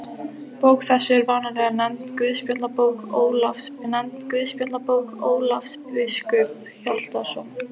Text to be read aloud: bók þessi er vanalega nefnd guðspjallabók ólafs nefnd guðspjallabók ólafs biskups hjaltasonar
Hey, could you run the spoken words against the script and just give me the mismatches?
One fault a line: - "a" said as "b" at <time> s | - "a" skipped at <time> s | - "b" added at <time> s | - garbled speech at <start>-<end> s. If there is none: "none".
none